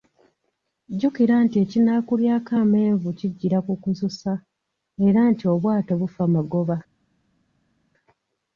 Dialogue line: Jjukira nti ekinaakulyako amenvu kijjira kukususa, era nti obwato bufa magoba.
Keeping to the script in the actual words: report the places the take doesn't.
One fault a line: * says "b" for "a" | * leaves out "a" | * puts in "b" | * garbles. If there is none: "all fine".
all fine